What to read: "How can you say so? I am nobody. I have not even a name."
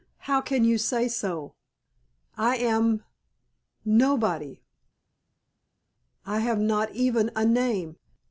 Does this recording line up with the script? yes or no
yes